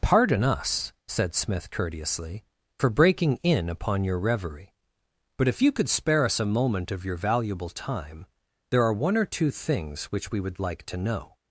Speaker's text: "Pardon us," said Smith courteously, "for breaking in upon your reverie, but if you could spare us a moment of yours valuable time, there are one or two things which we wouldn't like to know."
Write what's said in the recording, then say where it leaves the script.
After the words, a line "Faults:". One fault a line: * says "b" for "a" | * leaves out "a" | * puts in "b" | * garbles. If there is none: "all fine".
"Pardon us," said Smith courteously, "for breaking in upon your reverie, but if you could spare us a moment of your valuable time, there are one or two things which we would like to know."
Faults:
* says "your" for "yours"
* says "would" for "wouldn't"